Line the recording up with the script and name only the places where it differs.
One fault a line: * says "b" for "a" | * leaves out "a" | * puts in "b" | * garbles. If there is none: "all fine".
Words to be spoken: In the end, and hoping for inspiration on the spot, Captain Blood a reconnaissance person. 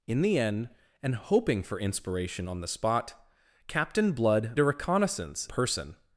all fine